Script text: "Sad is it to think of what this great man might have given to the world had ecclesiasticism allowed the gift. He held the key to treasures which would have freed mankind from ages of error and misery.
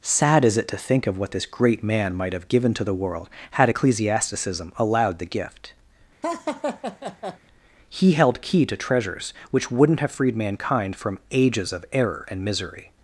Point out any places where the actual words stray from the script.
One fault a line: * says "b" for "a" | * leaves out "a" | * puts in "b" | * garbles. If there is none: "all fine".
* leaves out "the"
* says "wouldn't" for "would"